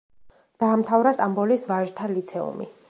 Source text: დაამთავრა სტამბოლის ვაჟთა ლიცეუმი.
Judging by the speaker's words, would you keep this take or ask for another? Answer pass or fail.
pass